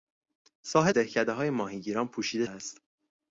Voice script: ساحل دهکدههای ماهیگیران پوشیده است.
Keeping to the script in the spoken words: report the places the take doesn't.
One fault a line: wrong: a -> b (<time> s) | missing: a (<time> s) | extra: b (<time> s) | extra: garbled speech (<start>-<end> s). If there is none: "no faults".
no faults